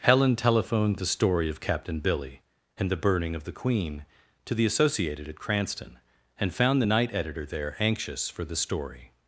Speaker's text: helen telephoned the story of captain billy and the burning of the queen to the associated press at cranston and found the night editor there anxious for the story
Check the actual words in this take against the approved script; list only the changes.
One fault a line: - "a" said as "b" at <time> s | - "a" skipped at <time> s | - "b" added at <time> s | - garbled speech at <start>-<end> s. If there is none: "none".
- "press" skipped at 5.3 s